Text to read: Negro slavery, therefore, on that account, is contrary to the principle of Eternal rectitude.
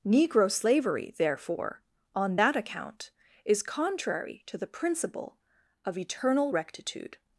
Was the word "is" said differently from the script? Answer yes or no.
no